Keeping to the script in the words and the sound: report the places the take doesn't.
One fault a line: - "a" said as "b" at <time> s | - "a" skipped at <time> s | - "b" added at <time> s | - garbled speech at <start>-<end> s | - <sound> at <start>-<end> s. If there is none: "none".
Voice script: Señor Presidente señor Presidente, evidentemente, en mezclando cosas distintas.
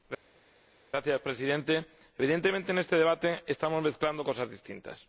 - "señor Presidente evidentemente en" said as "evidentemente en este debate estamos" at 2.2 s